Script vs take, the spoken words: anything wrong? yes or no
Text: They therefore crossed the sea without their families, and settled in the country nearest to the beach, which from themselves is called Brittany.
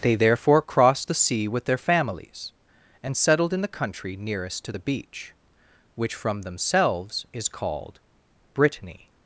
yes